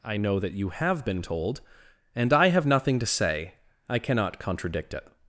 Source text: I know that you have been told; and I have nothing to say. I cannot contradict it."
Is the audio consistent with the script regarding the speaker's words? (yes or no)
yes